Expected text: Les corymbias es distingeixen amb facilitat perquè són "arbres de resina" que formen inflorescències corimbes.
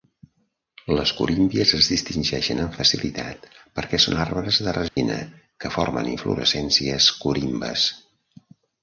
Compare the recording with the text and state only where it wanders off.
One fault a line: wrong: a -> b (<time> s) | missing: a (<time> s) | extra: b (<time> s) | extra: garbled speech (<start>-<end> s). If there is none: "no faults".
no faults